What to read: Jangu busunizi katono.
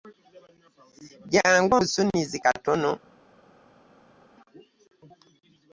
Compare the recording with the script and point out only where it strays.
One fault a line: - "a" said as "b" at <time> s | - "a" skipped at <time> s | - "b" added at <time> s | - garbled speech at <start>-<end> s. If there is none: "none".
none